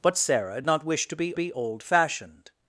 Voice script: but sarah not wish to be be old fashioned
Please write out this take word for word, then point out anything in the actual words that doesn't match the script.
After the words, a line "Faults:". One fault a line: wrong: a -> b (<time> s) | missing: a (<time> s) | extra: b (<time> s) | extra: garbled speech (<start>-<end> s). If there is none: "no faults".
but sarah not wish to be be old fashioned
Faults:
no faults